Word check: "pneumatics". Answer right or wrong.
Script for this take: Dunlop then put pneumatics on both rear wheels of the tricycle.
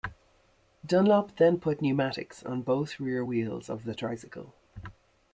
right